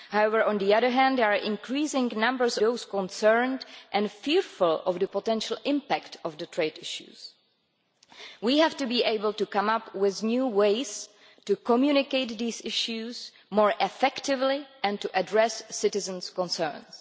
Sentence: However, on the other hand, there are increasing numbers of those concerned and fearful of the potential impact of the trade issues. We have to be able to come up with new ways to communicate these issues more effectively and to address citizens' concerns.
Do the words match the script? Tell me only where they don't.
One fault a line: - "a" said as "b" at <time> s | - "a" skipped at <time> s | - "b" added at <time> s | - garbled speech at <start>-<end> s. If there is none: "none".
- "of" skipped at 2.6 s